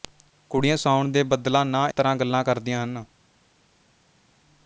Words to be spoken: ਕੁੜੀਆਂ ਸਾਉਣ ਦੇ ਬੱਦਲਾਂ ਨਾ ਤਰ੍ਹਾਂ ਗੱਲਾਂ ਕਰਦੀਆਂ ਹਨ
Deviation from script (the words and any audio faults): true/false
false